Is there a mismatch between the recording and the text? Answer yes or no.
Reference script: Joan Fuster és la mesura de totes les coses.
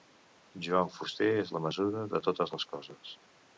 no